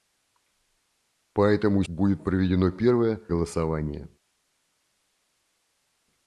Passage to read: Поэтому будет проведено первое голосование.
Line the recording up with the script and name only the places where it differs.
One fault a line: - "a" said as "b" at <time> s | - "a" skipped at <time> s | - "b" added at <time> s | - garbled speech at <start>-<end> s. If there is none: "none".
none